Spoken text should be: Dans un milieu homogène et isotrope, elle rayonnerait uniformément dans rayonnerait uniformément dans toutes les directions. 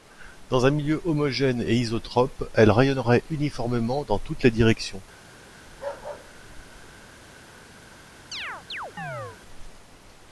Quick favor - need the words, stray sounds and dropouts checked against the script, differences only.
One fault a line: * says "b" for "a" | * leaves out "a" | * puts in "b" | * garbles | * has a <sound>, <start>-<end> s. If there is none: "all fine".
* leaves out "rayonnerait uniformément dans"
* has a bark, 5.7-7.1 s
* has a chirp, 8.3-9.4 s